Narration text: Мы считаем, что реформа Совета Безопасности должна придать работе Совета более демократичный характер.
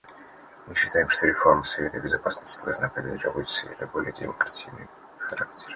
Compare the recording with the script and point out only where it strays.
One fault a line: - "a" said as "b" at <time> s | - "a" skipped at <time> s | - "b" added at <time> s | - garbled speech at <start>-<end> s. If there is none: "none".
none